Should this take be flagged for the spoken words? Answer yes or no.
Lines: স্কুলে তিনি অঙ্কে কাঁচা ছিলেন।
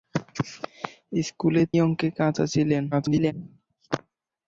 yes